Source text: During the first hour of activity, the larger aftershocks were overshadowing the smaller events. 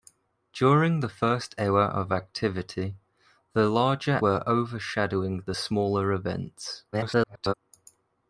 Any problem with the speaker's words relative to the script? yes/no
yes